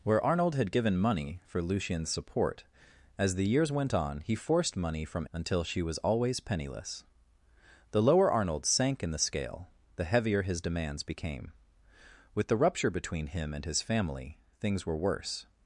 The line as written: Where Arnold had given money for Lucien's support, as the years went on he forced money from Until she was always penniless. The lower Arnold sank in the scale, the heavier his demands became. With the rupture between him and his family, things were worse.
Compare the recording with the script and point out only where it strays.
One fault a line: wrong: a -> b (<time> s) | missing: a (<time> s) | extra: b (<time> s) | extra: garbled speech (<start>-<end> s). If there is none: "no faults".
no faults